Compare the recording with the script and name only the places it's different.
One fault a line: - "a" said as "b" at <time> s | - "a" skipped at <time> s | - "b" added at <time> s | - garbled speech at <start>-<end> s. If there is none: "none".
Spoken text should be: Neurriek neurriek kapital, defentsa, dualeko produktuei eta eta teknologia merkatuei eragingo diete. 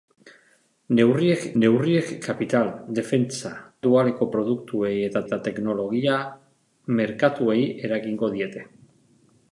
none